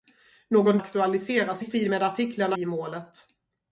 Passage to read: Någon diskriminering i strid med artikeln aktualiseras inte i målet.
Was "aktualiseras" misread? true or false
true